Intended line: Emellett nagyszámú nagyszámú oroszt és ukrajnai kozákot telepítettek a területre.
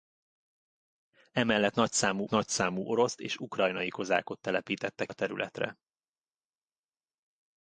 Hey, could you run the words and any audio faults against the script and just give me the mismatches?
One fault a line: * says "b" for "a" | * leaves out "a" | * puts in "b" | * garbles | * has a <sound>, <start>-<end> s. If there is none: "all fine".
all fine